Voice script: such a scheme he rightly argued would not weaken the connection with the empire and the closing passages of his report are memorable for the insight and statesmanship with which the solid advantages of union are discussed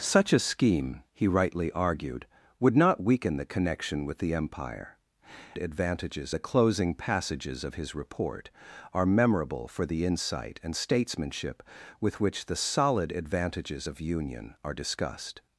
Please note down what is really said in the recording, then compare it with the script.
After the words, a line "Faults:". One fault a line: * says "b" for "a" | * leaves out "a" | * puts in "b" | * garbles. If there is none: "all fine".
such a scheme he rightly argued would not weaken the connection with the empire advantages the closing passages of his report are memorable for the insight and statesmanship with which the solid advantages of union are discussed
Faults:
* says "advantages" for "and"